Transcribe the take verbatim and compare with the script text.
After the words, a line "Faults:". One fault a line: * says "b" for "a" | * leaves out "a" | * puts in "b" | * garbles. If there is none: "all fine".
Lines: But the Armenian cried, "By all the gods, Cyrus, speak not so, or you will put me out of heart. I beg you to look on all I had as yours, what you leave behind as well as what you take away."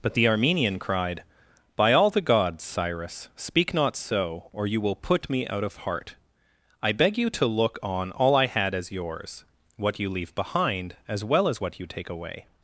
But the Armenian cried, "By all the gods, Cyrus, speak not so, or you will put me out of heart. I beg you to look on all I had as yours, what you leave behind as well as what you take away."
Faults:
all fine